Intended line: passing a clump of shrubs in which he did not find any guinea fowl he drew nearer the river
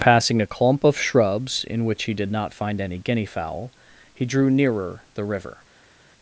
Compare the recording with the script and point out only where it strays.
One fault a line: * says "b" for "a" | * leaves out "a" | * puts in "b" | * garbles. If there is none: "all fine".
all fine